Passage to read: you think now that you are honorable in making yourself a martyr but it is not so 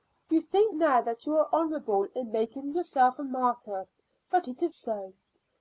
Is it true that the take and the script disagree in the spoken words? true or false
true